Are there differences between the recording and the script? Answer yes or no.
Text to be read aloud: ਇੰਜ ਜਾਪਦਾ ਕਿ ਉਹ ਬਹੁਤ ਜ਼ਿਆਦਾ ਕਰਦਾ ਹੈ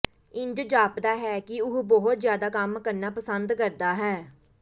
yes